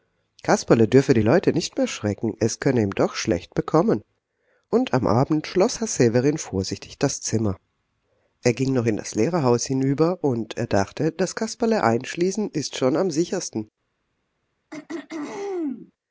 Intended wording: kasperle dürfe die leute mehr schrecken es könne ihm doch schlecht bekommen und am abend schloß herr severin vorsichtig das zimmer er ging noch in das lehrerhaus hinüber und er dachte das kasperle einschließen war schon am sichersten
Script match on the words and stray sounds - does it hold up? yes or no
no